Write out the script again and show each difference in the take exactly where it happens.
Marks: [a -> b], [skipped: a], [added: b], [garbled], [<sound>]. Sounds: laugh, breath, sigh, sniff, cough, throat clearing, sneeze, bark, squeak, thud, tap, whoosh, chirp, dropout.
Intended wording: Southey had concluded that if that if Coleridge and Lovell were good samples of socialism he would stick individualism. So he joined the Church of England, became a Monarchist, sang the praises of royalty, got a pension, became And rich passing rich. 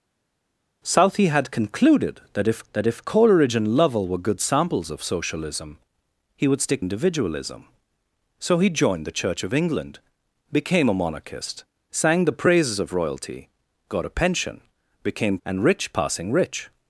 Southey had concluded that if that if Coleridge and Lovell were good samples of socialism he would stick individualism. So he joined the Church of England, became a Monarchist, sang the praises of royalty, got a pension, became And rich passing rich.